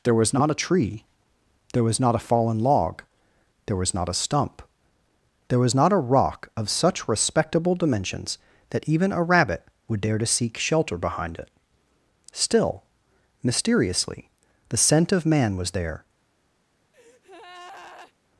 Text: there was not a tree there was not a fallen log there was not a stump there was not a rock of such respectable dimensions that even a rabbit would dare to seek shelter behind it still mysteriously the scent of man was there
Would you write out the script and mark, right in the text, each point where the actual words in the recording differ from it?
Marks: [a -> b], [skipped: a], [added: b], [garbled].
there was not a tree there was not a fallen log there was not a stump there was not a rock of such respectable dimensions that even a rabbit would dare to seek shelter behind it still mysteriously the scent of man was there